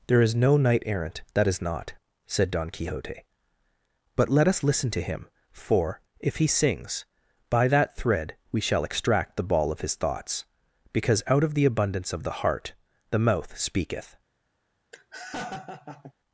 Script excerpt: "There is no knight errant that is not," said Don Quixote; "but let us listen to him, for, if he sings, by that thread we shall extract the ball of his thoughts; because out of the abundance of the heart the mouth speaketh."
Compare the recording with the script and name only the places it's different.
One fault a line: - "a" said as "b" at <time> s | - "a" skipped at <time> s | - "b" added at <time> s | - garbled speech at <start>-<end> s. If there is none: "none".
none